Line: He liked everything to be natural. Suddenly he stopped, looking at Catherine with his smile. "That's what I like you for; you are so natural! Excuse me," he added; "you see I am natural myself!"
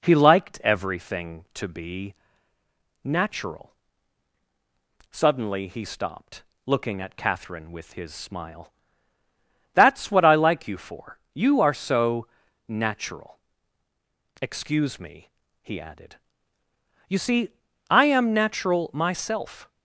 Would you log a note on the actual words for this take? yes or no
no